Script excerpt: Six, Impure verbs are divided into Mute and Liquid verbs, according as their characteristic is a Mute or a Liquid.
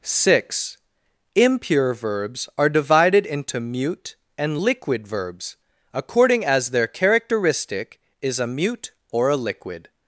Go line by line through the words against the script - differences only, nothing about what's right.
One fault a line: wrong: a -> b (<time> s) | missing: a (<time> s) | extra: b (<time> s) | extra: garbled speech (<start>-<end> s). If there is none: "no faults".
no faults